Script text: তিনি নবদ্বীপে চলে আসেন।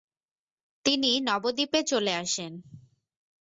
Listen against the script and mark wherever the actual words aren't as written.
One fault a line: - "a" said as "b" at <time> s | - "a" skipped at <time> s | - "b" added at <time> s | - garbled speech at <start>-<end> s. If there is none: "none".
none